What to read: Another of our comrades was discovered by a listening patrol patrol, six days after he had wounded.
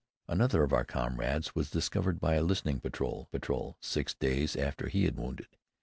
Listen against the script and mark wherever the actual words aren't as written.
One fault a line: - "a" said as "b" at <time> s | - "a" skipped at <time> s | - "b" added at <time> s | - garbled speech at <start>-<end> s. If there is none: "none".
none